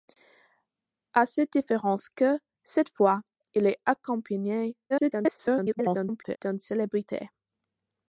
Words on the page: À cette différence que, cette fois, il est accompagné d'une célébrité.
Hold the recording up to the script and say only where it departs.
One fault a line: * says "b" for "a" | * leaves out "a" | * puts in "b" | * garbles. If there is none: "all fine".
* garbles